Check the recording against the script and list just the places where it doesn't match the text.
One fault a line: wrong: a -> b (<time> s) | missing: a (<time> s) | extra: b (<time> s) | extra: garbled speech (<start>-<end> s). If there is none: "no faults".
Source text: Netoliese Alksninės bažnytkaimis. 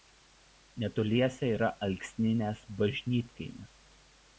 extra: yra (1.6 s)